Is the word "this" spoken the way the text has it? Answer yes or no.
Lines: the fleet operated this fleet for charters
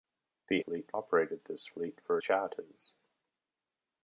yes